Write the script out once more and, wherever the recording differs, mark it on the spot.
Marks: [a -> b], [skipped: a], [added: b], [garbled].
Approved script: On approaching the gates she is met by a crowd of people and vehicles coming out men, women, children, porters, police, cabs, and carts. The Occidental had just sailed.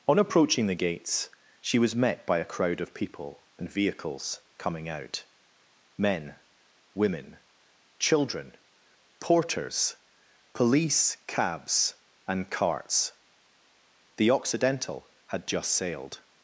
On approaching the gates she [is -> was] met by a crowd of people and vehicles coming out men, women, children, porters, police, cabs, and carts. The Occidental had just sailed.